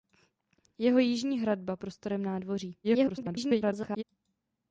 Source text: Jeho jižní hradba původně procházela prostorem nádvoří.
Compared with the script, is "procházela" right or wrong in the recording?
wrong